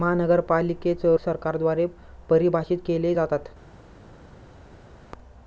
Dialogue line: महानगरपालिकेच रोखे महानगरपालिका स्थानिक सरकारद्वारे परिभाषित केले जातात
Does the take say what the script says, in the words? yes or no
no